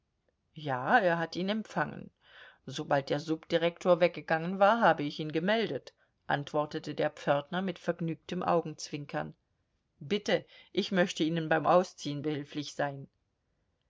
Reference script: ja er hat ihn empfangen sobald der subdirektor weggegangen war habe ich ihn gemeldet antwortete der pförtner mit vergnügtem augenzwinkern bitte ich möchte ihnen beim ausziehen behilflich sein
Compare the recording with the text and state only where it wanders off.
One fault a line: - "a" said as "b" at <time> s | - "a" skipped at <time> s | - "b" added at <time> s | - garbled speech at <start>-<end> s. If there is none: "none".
none